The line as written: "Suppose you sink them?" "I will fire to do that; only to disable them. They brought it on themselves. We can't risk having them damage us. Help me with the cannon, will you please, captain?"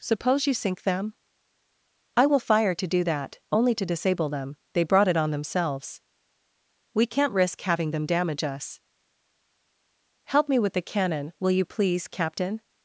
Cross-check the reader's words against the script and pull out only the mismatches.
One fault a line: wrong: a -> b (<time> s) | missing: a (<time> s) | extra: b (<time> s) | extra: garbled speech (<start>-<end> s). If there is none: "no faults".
no faults